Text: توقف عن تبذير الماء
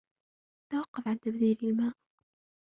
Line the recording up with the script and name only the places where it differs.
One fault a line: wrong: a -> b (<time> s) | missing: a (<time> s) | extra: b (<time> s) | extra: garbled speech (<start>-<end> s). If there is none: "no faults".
no faults